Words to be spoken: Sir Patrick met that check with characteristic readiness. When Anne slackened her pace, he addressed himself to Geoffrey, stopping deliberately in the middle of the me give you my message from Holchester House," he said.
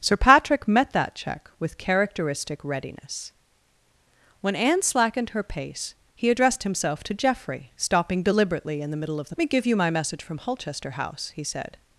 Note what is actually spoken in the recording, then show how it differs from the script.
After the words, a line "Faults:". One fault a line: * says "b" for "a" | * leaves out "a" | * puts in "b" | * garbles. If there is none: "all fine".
Sir Patrick met that check with characteristic readiness. When Anne slackened her pace, he addressed himself to Geoffrey, stopping deliberately in the middle of the me give you my message from Holchester House," he said.
Faults:
all fine